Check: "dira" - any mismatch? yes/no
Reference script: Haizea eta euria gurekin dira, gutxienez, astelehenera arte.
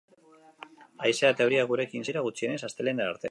no